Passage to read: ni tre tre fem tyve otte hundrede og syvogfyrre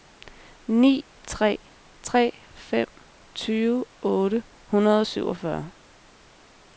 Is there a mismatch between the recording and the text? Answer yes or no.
no